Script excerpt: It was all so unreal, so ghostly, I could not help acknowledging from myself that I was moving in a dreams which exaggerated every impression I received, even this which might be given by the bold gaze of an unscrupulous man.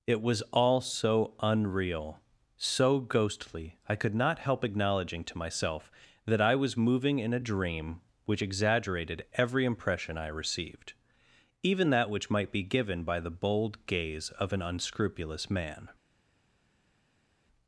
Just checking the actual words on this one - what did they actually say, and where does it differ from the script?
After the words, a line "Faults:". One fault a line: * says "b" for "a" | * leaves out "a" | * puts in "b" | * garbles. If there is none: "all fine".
It was all so unreal, so ghostly, I could not help acknowledging to myself that I was moving in a dream which exaggerated every impression I received, even that which might be given by the bold gaze of an unscrupulous man.
Faults:
* says "to" for "from"
* says "dream" for "dreams"
* says "that" for "this"